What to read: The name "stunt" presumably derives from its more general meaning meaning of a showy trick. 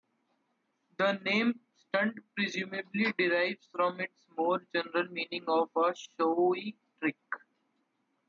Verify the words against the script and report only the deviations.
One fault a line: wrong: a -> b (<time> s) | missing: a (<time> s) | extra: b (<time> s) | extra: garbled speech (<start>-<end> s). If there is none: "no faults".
missing: meaning (5.4 s)